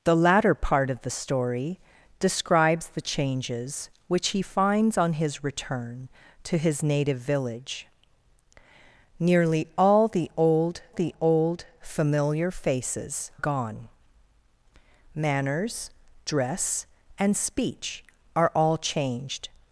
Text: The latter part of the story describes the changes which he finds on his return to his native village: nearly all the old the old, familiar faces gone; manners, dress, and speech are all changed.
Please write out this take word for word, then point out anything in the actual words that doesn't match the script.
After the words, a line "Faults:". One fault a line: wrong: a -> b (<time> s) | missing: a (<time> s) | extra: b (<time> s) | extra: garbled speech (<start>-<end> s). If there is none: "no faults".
The latter part of the story describes the changes which he finds on his return to his native village: nearly all the old the old, familiar faces gone; manners, dress, and speech are all changed.
Faults:
no faults